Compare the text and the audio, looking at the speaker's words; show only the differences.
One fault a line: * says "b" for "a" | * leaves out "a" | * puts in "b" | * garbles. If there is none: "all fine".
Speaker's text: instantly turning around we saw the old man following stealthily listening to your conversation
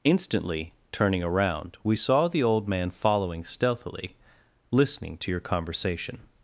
all fine